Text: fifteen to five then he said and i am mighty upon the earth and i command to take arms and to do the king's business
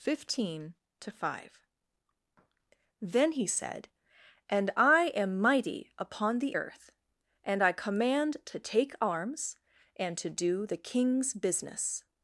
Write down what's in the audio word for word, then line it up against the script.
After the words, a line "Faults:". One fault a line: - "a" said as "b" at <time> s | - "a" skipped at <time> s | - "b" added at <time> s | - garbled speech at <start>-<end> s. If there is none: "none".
fifteen to five then he said and i am mighty upon the earth and i command to take arms and to do the king's business
Faults:
none